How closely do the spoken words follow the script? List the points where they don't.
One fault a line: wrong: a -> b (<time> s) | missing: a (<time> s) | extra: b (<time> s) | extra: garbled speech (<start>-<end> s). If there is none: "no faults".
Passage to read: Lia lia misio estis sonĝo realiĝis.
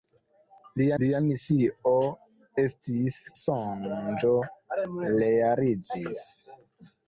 no faults